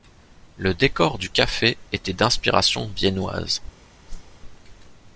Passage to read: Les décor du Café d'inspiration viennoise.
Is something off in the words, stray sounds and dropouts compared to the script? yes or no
yes